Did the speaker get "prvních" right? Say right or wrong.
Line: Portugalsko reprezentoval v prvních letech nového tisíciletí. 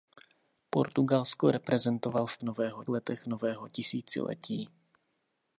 wrong